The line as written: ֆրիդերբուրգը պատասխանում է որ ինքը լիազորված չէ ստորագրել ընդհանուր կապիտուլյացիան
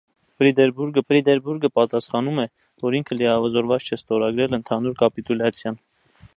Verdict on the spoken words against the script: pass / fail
fail